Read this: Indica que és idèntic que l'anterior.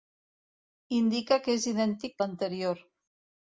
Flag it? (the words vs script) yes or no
yes